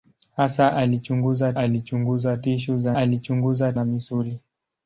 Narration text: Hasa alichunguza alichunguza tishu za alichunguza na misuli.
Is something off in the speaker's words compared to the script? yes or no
no